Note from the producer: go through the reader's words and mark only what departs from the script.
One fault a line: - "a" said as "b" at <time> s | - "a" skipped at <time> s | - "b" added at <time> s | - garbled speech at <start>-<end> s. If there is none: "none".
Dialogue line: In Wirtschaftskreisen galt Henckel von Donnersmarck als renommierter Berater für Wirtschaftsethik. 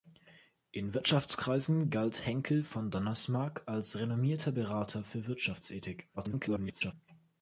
- garbled speech at 6.2-6.9 s